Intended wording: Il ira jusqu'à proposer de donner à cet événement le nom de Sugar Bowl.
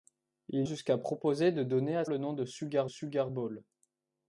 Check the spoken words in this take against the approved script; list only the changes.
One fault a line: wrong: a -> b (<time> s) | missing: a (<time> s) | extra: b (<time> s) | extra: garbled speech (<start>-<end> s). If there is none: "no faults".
missing: ira (0.7 s)
missing: cet événement (2.0 s)
extra: Sugar (2.8 s)